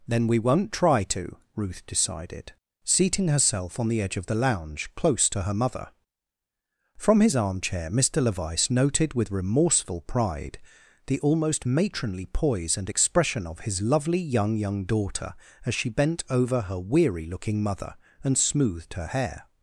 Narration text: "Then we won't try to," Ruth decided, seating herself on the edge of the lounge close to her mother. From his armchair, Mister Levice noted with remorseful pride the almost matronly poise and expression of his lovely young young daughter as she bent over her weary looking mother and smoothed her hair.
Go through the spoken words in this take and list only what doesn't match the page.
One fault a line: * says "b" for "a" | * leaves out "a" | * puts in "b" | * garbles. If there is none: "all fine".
all fine